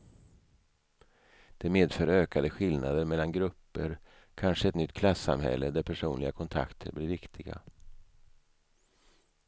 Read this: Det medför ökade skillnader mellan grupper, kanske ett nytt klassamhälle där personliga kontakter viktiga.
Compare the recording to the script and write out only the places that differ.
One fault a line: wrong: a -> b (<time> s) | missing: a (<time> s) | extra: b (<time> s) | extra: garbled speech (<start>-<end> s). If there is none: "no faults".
extra: blir (6.9 s)